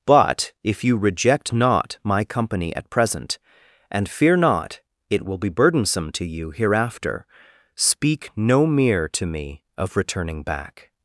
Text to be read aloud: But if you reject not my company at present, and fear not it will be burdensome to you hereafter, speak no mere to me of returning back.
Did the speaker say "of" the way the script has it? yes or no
yes